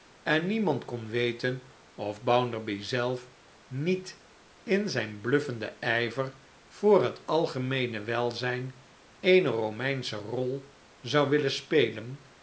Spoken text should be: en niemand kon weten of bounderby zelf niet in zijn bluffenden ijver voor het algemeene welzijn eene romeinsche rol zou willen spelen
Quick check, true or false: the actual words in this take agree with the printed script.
true